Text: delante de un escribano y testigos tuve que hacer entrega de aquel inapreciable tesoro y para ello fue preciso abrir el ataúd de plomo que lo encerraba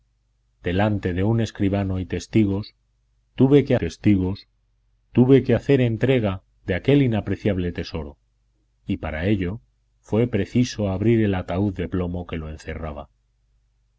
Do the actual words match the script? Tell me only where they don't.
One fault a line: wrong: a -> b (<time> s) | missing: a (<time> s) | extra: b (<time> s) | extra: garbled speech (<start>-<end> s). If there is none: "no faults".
extra: testigos tuve que (3.8 s)